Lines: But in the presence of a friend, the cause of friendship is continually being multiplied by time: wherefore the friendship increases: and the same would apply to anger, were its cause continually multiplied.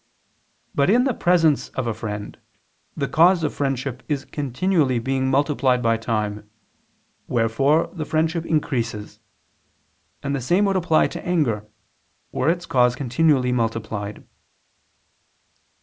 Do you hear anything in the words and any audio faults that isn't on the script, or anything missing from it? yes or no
no